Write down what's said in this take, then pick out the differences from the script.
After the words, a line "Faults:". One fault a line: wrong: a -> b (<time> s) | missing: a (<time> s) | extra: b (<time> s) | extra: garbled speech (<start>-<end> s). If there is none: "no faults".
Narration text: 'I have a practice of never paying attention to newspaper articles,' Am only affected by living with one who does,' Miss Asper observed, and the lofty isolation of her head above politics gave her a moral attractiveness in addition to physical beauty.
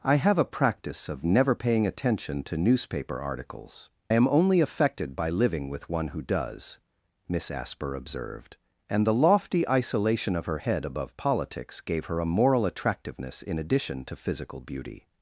'I have a practice of never paying attention to newspaper articles,' Am only affected by living with one who does,' Miss Asper observed, and the lofty isolation of her head above politics gave her a moral attractiveness in addition to physical beauty.
Faults:
no faults